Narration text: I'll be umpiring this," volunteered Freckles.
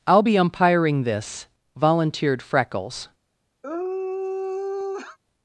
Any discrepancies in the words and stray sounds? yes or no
yes